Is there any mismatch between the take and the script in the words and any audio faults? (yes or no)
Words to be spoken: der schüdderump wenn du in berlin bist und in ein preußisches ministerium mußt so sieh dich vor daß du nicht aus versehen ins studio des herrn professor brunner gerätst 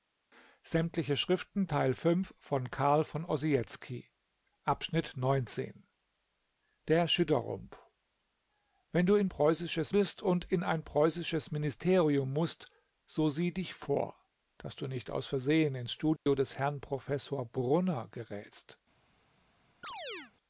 yes